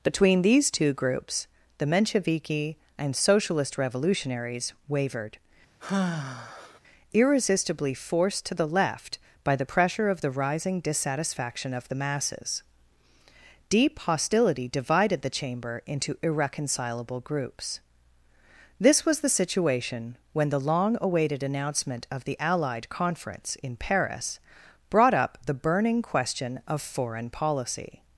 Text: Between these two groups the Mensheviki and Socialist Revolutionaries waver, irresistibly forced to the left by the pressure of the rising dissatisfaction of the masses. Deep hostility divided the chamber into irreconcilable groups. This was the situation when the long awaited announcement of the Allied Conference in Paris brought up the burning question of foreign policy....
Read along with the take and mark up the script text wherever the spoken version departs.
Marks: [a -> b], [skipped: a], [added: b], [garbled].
Between these two groups the Mensheviki and Socialist Revolutionaries [waver, -> wavered] irresistibly forced to the left by the pressure of the rising dissatisfaction of the masses. Deep hostility divided the chamber into irreconcilable groups. This was the situation when the long awaited announcement of the Allied Conference in Paris brought up the burning question of foreign policy....